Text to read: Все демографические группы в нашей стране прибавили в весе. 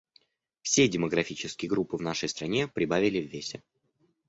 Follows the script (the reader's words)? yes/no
yes